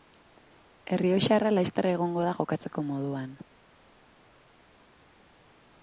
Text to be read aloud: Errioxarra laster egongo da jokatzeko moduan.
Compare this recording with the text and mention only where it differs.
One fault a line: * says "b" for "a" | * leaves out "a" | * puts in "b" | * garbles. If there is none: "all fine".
all fine